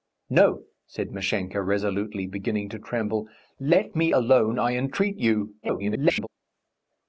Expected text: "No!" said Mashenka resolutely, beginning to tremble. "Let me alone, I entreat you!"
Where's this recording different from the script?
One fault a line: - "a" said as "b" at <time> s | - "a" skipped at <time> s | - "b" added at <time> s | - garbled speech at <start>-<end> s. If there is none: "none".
- garbled speech at 5.6-6.3 s